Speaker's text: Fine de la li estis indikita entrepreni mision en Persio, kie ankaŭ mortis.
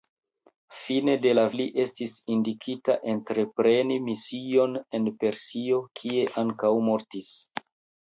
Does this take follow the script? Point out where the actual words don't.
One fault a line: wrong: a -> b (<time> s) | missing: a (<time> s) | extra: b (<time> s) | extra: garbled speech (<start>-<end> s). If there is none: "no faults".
no faults